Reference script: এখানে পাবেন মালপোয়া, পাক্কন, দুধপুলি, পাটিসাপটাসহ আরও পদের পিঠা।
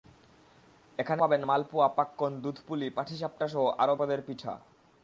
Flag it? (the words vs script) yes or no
no